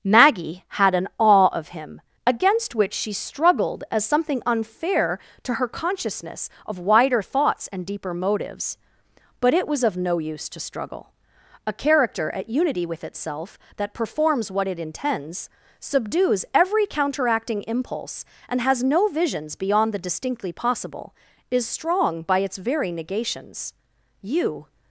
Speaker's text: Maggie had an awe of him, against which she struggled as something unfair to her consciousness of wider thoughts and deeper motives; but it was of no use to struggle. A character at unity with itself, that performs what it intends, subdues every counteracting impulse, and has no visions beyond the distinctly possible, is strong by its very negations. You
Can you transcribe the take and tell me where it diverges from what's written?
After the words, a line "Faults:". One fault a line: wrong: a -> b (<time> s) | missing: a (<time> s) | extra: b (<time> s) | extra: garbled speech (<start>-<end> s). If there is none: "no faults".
Maggie had an awe of him, against which she struggled as something unfair to her consciousness of wider thoughts and deeper motives; but it was of no use to struggle. A character at unity with itself, that performs what it intends, subdues every counteracting impulse, and has no visions beyond the distinctly possible, is strong by its very negations. You
Faults:
no faults